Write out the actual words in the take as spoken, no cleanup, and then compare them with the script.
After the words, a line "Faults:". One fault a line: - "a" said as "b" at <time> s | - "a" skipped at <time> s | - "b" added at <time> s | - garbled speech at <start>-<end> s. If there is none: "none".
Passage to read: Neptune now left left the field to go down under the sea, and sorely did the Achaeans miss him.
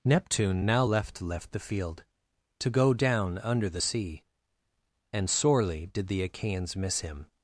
Neptune now left left the field to go down under the sea, and sorely did the Achaeans miss him.
Faults:
none